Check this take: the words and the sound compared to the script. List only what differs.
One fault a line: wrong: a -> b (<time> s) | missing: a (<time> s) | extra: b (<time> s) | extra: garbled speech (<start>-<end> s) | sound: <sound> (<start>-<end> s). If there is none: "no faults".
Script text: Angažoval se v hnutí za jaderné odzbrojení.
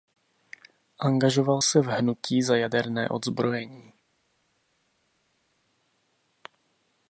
no faults